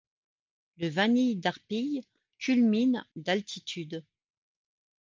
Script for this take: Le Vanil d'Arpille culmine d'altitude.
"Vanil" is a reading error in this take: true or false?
false